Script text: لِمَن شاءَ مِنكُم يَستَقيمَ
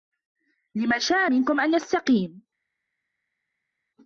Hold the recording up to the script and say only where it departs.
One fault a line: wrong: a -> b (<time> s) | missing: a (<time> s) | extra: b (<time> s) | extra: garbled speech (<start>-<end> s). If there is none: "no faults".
extra: أَن (1.6 s)